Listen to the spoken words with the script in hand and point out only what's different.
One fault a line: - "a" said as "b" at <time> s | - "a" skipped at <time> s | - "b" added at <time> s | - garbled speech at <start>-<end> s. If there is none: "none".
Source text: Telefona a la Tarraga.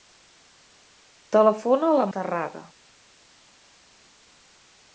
none